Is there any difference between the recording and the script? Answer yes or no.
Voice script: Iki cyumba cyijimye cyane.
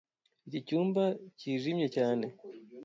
no